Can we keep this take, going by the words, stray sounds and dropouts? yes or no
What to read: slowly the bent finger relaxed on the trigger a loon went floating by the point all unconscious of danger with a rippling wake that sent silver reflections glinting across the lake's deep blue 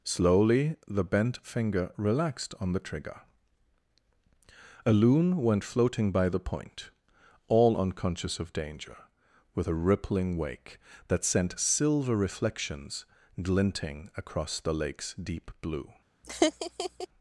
no